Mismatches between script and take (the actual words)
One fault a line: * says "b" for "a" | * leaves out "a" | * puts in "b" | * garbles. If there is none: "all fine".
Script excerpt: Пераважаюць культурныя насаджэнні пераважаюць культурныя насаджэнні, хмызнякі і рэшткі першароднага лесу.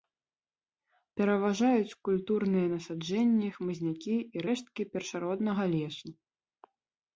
* leaves out "пераважаюць культурныя насаджэнні"